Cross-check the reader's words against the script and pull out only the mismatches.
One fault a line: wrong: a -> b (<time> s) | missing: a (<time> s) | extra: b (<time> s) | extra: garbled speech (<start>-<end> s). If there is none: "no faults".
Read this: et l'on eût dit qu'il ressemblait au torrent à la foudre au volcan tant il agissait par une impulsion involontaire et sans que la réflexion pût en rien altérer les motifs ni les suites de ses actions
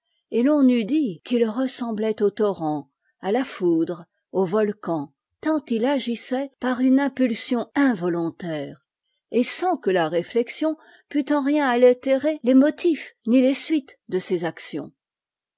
no faults